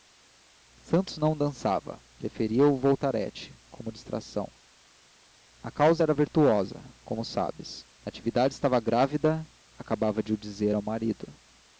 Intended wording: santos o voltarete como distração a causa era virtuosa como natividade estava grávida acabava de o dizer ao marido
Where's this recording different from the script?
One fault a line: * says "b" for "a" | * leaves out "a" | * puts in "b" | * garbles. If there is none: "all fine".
* puts in "não dançava preferia"
* puts in "sabes"